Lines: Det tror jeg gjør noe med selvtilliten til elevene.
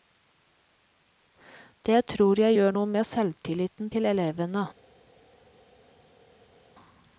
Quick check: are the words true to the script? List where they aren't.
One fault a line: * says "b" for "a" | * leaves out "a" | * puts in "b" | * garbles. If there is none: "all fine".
all fine